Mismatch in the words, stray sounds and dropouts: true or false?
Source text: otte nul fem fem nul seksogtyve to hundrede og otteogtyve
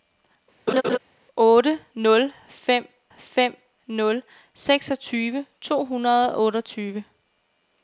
true